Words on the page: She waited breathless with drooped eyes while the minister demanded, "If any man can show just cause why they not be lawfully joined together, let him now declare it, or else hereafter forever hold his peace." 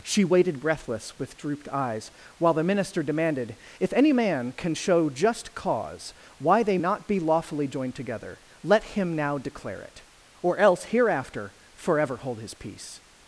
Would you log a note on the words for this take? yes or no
no